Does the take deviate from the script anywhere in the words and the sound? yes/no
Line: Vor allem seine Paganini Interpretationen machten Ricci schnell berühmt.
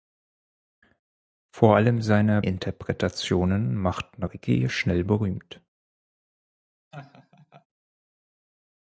yes